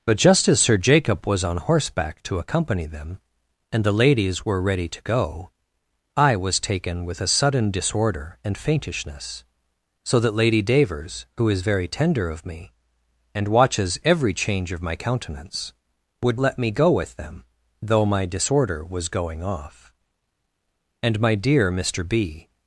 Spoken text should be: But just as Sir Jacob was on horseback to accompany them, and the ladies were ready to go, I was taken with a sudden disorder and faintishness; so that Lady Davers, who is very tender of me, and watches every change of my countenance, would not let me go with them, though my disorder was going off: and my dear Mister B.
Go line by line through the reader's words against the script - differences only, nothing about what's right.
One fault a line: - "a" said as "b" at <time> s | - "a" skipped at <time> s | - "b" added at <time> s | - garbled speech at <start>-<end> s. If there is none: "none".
- "not" skipped at 16.4 s